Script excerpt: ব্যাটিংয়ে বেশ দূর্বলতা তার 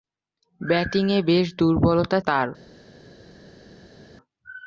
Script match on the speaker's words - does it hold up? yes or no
yes